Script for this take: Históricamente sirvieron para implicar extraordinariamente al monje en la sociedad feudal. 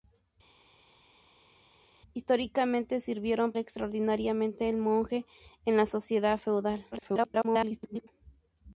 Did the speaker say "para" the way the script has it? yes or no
no